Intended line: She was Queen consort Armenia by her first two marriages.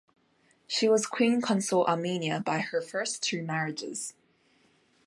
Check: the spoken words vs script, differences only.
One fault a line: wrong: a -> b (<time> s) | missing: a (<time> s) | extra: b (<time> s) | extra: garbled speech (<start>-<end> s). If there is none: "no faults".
no faults